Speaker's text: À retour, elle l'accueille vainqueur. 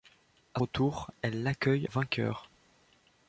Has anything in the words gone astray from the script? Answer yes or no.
no